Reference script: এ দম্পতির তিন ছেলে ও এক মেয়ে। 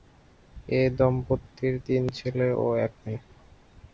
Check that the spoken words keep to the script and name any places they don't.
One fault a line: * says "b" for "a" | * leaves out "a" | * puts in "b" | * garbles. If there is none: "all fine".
all fine